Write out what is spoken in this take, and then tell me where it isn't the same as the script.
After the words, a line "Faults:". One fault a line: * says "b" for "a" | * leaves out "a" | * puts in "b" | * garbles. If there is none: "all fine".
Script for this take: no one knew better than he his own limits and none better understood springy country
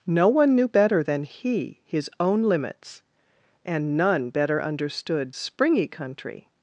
no one knew better than he his own limits and none better understood springy country
Faults:
all fine